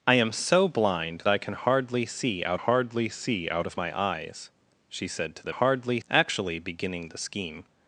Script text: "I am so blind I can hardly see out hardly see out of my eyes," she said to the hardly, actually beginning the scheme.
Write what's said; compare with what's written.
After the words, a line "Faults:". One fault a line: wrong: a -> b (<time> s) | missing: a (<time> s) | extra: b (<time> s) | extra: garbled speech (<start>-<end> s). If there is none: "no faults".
"I am so blind I can hardly see out hardly see out of my eyes," she said to the hardly, actually beginning the scheme.
Faults:
no faults